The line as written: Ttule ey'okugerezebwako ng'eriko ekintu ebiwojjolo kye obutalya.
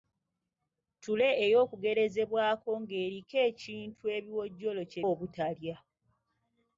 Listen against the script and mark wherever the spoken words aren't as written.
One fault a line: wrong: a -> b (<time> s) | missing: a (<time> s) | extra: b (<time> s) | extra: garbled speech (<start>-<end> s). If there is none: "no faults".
no faults